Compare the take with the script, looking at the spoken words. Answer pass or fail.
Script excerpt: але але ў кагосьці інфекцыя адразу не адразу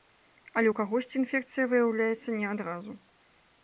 fail